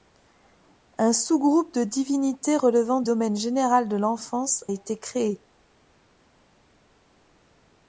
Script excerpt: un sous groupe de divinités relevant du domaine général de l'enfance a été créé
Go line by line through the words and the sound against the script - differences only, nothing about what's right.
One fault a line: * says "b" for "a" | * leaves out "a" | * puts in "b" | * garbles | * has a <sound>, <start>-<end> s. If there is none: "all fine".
* leaves out "du"
* leaves out "a"